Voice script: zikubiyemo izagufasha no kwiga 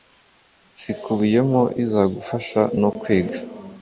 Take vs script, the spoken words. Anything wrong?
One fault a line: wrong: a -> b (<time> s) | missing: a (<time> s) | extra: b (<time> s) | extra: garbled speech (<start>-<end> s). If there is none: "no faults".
no faults